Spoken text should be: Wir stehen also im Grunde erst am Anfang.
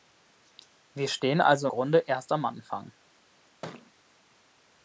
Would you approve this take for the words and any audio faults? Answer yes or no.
no